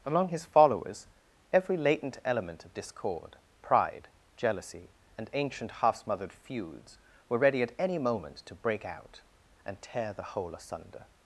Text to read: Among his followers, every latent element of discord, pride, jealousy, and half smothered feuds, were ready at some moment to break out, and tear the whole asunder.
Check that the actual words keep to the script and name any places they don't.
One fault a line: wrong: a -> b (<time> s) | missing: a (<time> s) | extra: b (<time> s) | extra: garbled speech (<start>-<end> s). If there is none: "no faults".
extra: ancient (5.3 s)
wrong: some -> any (7.8 s)